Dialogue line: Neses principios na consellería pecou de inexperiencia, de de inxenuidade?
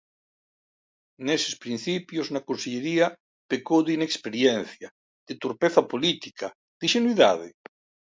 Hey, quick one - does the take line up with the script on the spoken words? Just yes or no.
no